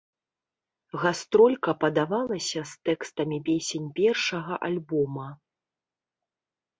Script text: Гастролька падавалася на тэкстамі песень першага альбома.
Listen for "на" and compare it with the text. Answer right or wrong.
wrong